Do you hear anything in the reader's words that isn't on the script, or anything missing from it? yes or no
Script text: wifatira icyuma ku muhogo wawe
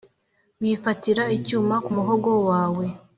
no